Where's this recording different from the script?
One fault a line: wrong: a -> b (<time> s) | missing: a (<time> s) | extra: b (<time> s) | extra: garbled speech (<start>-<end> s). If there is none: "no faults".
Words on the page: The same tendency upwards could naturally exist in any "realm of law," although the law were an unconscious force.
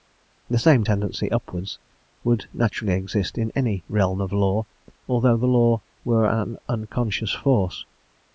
wrong: could -> would (2.2 s)